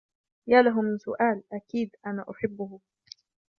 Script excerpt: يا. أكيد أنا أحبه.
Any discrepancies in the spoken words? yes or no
yes